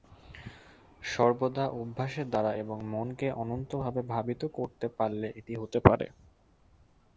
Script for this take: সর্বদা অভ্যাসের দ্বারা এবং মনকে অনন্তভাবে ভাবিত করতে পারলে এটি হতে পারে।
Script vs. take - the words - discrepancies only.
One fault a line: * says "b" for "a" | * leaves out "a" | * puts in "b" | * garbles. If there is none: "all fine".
all fine